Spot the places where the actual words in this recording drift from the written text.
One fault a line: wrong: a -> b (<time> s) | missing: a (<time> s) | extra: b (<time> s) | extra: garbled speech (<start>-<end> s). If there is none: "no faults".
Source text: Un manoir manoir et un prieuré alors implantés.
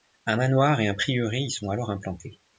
missing: manoir (0.8 s)
extra: y sont (1.4 s)